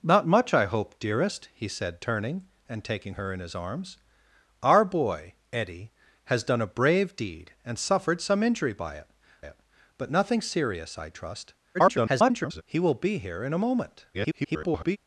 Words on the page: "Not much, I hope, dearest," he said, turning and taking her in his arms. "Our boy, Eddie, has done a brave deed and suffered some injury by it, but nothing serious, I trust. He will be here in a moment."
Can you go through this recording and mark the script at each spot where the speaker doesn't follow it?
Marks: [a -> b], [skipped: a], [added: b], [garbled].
"Not much, I hope, dearest," he said, turning and taking her in his arms. "Our boy, Eddie, has done a brave deed and suffered some injury by it, [added: it] but nothing serious, I trust. [garbled] He will be here in a moment." [garbled]